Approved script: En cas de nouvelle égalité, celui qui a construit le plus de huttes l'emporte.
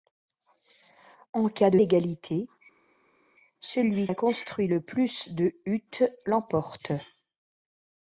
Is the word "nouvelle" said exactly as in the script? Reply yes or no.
no